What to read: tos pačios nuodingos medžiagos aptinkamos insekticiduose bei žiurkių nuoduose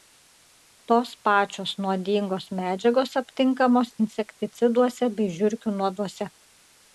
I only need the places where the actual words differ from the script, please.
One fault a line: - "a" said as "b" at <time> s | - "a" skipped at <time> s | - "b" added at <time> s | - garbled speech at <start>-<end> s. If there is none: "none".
none